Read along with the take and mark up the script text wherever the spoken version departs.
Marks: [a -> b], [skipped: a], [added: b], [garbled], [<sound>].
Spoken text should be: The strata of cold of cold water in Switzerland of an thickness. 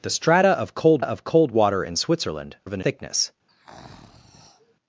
The strata of cold of cold water in Switzerland of an thickness. [breath]